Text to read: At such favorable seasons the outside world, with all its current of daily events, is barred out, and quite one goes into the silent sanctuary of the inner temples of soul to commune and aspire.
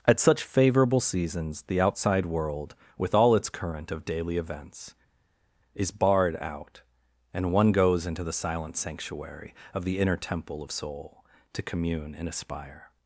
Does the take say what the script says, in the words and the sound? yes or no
no